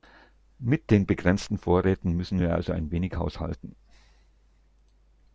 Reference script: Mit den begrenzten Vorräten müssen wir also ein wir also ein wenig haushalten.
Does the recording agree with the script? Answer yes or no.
no